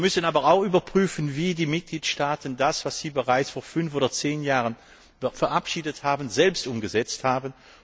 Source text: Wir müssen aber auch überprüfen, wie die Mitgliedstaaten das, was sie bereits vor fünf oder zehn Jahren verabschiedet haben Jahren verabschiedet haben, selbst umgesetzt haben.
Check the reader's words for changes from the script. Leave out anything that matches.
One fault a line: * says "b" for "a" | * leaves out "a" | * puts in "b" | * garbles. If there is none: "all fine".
* leaves out "Jahren verabschiedet haben"